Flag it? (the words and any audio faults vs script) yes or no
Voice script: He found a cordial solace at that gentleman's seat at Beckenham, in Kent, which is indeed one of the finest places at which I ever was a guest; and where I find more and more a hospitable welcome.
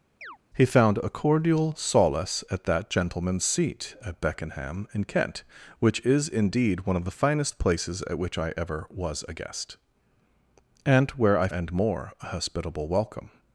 yes